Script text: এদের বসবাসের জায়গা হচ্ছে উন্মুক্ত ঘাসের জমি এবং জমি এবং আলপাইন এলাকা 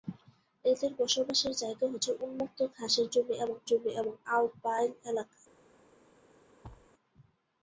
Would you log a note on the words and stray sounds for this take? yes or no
yes